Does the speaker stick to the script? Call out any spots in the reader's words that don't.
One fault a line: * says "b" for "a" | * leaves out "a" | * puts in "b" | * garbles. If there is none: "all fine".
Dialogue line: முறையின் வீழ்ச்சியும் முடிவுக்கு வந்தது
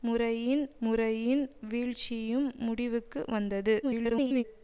* puts in "முறையின்"
* garbles